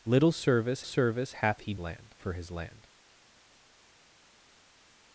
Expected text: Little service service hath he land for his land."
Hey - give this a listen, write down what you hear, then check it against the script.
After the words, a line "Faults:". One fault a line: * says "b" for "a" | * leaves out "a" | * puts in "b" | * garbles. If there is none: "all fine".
Little service service hath he land for his land."
Faults:
all fine